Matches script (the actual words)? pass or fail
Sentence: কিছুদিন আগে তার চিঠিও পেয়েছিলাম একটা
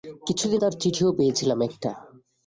fail